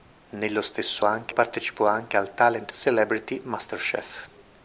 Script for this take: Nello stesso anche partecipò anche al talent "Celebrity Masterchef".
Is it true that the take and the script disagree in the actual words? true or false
false